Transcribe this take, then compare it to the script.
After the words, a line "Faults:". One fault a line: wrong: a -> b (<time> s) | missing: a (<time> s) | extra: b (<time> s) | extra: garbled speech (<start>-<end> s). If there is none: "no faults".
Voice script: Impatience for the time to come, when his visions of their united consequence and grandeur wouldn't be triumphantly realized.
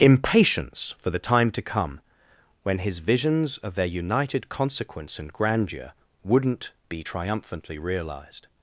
Impatience for the time to come, when his visions of their united consequence and grandeur wouldn't be triumphantly realized.
Faults:
no faults